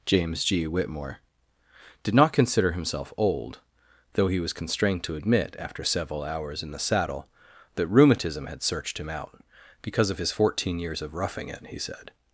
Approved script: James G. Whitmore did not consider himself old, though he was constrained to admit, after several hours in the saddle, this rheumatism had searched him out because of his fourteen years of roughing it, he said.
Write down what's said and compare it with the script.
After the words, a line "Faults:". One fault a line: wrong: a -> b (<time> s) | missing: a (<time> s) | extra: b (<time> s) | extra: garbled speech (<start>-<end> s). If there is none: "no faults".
James G. Whitmore did not consider himself old, though he was constrained to admit, after several hours in the saddle, that rheumatism had searched him out because of his fourteen years of roughing it, he said.
Faults:
wrong: this -> that (7.8 s)